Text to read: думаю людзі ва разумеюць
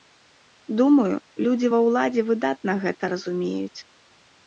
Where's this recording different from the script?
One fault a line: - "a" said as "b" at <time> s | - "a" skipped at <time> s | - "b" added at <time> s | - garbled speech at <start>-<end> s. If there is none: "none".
- "ўладзе выдатна гэта" added at 1.9 s